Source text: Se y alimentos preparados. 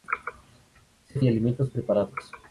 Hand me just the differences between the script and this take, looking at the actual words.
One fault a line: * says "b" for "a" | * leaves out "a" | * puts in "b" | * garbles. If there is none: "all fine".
all fine